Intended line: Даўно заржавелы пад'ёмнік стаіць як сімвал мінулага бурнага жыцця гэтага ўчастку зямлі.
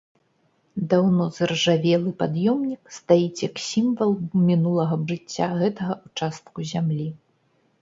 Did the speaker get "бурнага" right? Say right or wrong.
wrong